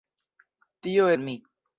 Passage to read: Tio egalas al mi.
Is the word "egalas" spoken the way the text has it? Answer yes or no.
no